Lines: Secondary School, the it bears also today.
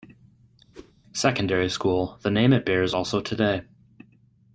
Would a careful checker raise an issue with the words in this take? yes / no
yes